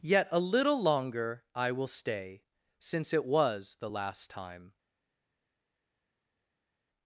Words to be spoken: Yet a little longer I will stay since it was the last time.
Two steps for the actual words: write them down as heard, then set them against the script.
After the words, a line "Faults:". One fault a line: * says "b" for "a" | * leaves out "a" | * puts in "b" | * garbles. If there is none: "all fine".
Yet a little longer I will stay since it was the last time.
Faults:
all fine